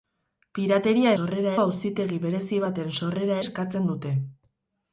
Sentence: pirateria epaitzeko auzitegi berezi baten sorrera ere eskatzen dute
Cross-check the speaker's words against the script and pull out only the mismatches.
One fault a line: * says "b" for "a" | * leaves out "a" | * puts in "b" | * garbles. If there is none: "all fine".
* says "sorrera" for "epaitzeko"
* leaves out "ere"